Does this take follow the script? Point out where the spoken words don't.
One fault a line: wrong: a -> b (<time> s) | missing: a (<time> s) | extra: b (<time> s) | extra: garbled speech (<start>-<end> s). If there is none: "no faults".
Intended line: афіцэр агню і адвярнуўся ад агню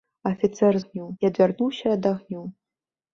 no faults